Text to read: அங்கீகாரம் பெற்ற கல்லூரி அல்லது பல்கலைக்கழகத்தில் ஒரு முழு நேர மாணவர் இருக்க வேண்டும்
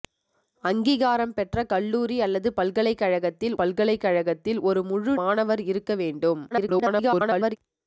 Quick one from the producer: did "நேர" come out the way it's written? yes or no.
no